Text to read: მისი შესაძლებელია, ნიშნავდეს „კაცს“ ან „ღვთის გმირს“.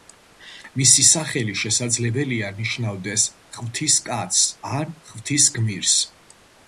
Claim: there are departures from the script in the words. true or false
true